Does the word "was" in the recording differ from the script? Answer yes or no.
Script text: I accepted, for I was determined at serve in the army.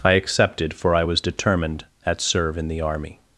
no